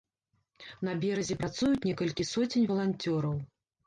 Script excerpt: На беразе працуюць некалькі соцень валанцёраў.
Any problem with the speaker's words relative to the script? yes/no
no